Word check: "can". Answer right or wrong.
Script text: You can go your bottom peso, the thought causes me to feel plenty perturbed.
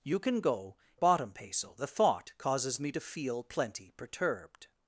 right